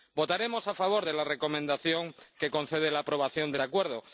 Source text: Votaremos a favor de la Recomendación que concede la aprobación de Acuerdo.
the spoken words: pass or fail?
pass